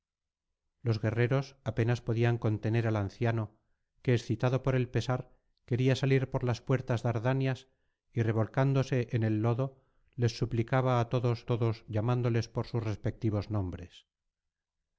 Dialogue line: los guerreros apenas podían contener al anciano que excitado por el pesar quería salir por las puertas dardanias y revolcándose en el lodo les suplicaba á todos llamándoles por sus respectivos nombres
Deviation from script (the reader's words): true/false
true